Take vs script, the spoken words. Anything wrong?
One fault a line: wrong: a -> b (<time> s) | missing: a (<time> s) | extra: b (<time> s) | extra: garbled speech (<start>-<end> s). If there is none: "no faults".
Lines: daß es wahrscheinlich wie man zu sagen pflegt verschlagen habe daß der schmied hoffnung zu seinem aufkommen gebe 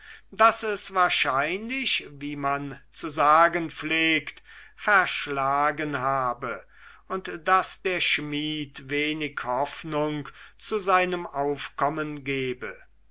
extra: und (7.1 s)
extra: wenig (8.9 s)